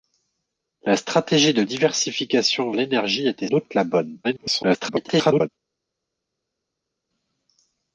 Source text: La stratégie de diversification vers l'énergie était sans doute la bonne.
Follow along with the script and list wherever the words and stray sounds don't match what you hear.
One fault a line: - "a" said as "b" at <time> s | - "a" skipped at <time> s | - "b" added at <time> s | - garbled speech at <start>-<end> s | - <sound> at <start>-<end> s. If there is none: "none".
- "vers" skipped at 2.7 s
- "sans" skipped at 3.5 s
- garbled speech at 4.2-5.5 s